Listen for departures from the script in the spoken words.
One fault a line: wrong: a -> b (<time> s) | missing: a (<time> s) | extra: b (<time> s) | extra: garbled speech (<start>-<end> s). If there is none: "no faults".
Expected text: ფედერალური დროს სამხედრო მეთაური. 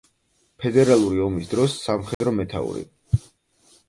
extra: ომის (1.2 s)